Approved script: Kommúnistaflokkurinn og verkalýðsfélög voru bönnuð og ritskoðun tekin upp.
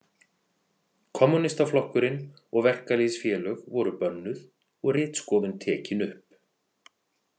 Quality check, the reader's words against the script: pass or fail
pass